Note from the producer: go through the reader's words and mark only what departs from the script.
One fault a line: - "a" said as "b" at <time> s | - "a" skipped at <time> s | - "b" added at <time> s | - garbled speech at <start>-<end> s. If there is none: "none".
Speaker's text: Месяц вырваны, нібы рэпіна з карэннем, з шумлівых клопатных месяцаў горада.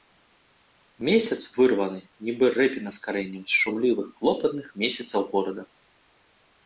none